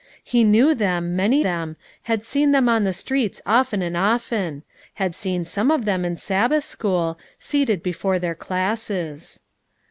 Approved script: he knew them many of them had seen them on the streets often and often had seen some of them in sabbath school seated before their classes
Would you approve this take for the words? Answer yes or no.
no